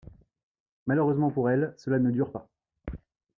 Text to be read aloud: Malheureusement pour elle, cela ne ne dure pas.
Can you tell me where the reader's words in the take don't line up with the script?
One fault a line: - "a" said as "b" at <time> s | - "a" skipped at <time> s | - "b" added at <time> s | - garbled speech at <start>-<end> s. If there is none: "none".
- "ne" skipped at 2.1 s